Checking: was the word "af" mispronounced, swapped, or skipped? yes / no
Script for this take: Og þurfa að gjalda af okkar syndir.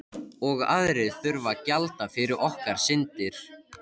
yes